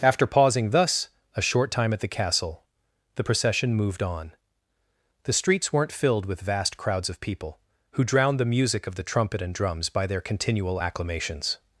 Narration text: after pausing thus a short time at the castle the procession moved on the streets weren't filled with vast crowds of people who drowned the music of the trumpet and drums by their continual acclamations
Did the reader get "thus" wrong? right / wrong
right